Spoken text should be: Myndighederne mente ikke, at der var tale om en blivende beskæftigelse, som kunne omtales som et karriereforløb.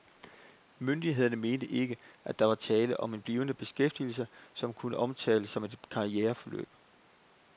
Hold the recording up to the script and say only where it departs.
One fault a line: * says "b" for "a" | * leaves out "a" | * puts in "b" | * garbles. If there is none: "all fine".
all fine